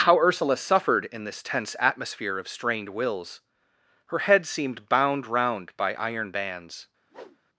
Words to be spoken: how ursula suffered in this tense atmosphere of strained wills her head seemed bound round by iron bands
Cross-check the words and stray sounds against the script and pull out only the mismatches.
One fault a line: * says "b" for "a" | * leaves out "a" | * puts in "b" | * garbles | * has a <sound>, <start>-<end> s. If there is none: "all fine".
* has a whoosh, 7.1-7.4 s